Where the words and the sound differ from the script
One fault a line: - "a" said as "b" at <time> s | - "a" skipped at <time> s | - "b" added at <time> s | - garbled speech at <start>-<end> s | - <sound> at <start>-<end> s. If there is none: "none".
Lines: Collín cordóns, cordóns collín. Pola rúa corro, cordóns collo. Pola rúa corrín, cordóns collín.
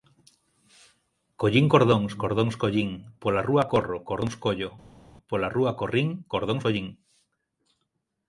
none